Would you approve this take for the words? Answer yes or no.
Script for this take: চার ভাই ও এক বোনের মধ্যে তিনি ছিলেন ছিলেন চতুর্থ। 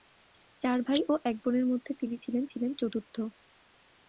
yes